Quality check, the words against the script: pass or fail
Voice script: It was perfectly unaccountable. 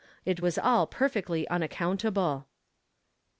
fail